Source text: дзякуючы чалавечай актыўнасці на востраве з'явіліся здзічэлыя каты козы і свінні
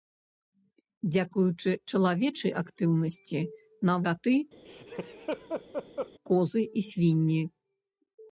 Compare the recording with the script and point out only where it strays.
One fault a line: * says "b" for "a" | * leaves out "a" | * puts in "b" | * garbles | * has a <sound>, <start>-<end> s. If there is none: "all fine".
* leaves out "востраве з'явіліся здзічэлыя"
* has a laugh, 4.7-6.1 s